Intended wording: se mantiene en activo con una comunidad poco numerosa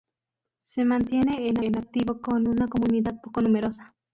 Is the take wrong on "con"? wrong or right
right